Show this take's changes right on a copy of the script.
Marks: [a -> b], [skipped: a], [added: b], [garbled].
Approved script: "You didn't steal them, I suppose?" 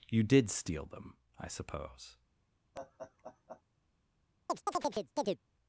"You [didn't -> did] steal them, I suppose?"